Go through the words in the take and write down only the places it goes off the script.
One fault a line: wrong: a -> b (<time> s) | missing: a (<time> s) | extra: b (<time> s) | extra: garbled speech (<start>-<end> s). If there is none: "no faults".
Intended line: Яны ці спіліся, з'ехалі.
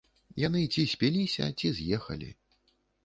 extra: ці (1.6 s)